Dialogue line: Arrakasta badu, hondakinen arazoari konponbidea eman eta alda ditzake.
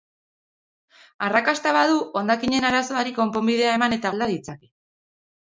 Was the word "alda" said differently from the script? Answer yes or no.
no